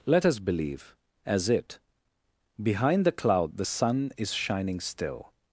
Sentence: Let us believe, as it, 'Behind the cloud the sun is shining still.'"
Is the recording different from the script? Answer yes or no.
no